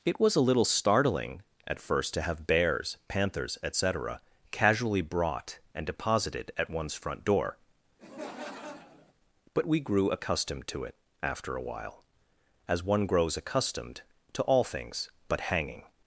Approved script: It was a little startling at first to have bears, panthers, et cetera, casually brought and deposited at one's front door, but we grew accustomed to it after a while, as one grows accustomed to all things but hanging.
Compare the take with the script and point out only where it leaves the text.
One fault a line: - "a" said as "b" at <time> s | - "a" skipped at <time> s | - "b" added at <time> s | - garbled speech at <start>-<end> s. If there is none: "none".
none